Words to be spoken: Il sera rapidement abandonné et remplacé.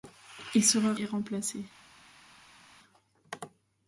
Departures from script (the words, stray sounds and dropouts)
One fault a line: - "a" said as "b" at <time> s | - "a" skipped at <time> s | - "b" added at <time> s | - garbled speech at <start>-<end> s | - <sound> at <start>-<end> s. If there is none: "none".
- "rapidement abandonné" skipped at 0.9 s